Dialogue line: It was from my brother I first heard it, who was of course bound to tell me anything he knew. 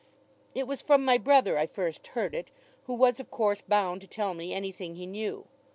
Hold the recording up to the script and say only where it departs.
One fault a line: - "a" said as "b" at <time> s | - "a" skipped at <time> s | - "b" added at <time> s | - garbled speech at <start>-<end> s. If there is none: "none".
none